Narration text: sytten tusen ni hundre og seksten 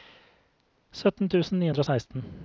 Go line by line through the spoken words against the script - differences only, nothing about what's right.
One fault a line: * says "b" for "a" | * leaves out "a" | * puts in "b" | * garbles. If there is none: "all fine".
all fine